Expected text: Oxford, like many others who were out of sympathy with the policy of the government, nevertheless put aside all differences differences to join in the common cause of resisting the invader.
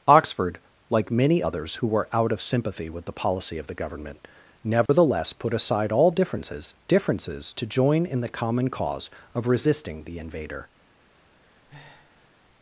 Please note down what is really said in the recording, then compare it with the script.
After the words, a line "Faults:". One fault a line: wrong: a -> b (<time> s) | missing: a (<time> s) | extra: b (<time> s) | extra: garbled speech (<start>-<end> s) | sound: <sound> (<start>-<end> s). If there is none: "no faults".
Oxford, like many others who were out of sympathy with the policy of the government, nevertheless put aside all differences differences to join in the common cause of resisting the invader.
Faults:
sound: dropout (4.9-4.9 s)
sound: breath (11.4-12.3 s)